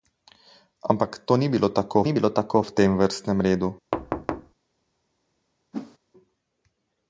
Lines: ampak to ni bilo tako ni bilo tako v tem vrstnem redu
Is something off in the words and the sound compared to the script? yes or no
yes